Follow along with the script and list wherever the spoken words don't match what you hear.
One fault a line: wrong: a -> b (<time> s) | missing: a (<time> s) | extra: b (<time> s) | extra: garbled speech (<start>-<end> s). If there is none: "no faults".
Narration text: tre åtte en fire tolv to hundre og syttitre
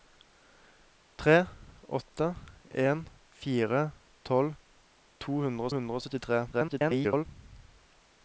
extra: hundre (5.8 s)
extra: garbled speech (6.5-7.3 s)